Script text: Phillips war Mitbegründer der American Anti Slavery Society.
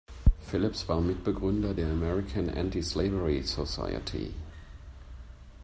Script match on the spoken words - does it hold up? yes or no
yes